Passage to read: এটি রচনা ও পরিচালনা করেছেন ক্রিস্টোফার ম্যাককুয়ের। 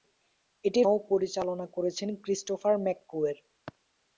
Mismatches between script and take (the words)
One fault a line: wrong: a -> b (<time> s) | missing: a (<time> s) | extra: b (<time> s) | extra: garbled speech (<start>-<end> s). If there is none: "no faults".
missing: রচনা (0.8 s)